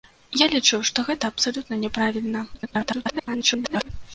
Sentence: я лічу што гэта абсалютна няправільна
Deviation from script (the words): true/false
true